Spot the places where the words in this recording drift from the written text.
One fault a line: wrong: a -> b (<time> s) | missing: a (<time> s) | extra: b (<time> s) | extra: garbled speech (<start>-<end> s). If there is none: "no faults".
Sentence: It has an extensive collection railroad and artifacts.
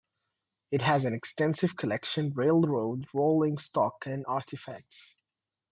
extra: rolling stock (3.1 s)